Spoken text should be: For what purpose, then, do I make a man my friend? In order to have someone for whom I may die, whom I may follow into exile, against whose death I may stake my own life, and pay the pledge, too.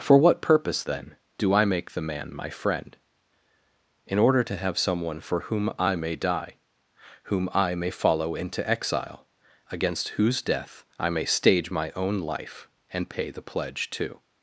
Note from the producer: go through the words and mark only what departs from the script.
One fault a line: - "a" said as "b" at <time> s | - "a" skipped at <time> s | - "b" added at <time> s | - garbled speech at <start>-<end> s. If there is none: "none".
- "a" said as "the" at 1.9 s
- "stake" said as "stage" at 11.2 s